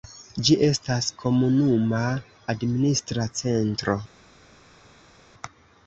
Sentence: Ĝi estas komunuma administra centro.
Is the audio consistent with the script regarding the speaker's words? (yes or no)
yes